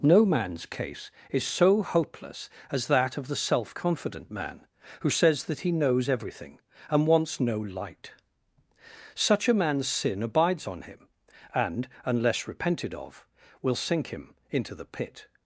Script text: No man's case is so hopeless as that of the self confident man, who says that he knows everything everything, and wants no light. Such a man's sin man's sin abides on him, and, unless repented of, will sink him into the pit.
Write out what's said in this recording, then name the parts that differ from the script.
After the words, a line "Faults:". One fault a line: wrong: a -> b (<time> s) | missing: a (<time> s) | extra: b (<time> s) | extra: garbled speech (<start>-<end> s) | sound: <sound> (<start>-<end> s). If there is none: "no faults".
No man's case is so hopeless as that of the self confident man, who says that he knows everything, and wants no light. Such a man's sin abides on him, and, unless repented of, will sink him into the pit.
Faults:
missing: everything (6.6 s)
missing: man's sin (10.2 s)